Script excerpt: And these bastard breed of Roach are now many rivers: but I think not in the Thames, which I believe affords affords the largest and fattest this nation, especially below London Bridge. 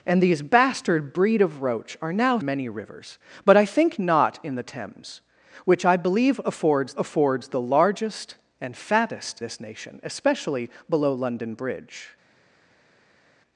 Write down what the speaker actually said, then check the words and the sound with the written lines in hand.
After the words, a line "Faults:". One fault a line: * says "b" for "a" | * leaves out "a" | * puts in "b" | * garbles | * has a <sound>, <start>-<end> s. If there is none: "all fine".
And these bastard breed of Roach are now many rivers: but I think not in the Thames, which I believe affords affords the largest and fattest this nation, especially below London Bridge.
Faults:
all fine